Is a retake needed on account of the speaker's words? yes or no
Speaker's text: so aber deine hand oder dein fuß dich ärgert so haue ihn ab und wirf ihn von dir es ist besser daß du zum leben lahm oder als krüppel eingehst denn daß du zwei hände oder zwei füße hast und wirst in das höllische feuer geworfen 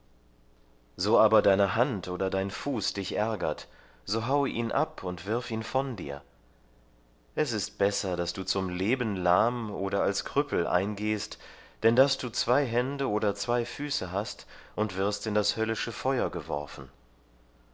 no